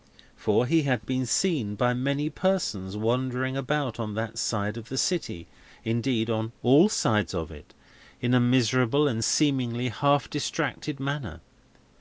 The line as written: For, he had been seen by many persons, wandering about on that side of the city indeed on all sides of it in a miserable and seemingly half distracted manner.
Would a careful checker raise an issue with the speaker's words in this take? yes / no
no